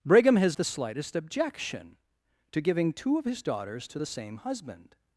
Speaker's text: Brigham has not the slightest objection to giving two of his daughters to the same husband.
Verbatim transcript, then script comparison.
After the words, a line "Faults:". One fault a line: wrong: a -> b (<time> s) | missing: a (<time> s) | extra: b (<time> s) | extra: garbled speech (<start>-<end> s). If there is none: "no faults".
Brigham has the slightest objection to giving two of his daughters to the same husband.
Faults:
missing: not (0.6 s)